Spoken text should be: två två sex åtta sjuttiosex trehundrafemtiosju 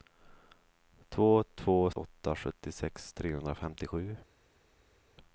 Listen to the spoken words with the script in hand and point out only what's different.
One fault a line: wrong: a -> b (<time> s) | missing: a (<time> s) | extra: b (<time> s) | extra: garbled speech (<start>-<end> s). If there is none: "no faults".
missing: sex (1.9 s)